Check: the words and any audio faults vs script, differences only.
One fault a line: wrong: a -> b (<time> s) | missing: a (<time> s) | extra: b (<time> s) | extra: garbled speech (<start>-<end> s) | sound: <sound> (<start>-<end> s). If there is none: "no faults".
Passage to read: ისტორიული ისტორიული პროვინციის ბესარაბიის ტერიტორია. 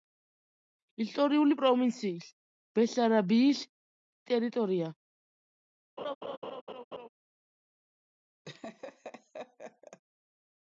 missing: ისტორიული (1.6 s)
sound: laugh (6.0-7.1 s)
sound: laugh (8.5-10.0 s)